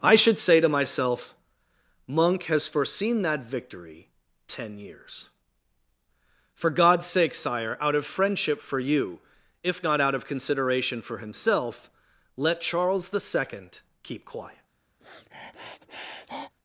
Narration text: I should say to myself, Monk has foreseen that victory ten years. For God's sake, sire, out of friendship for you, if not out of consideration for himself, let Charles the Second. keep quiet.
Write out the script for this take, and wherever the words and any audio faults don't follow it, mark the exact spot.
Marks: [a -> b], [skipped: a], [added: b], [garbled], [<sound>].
I should say to myself, Monk has foreseen that victory ten years. For God's sake, sire, out of friendship for you, if not out of consideration for himself, let Charles the Second. keep quiet. [sniff]